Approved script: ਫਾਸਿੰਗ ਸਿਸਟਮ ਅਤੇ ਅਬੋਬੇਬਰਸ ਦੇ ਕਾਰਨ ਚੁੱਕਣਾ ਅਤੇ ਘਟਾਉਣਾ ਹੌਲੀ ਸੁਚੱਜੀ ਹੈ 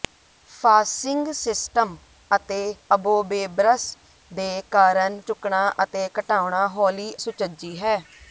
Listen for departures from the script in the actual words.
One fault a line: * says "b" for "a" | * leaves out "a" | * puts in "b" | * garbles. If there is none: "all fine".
all fine